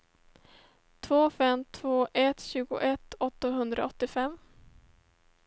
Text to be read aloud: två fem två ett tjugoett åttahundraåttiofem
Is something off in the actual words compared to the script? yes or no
no